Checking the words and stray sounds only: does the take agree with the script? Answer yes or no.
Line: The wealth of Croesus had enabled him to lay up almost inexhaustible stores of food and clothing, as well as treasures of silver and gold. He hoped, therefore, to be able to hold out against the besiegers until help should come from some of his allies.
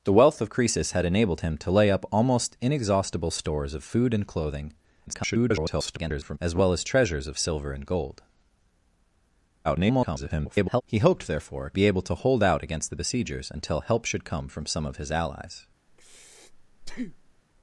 no